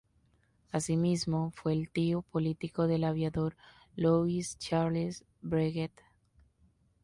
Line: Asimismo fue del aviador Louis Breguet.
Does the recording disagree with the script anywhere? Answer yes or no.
yes